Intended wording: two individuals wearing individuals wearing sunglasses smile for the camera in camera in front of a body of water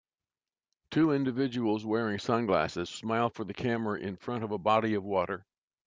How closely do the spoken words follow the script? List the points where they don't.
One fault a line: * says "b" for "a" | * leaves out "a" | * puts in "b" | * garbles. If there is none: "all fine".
* leaves out "individuals wearing"
* leaves out "camera in"